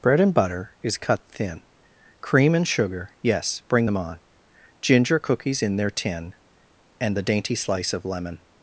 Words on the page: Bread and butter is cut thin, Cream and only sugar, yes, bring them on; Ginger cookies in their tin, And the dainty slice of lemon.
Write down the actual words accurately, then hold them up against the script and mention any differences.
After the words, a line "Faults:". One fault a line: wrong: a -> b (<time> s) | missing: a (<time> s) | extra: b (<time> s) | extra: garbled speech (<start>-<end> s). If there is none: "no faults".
Bread and butter is cut thin, Cream and sugar, yes, bring them on; Ginger cookies in their tin, And the dainty slice of lemon.
Faults:
missing: only (2.7 s)